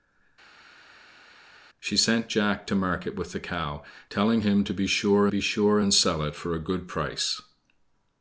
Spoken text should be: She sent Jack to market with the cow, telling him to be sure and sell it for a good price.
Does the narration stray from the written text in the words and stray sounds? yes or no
yes